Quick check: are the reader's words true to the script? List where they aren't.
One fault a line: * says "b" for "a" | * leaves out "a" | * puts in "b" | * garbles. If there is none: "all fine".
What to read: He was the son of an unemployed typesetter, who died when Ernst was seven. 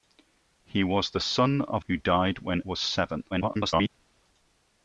* leaves out "an unemployed typesetter"
* leaves out "Ernst"
* garbles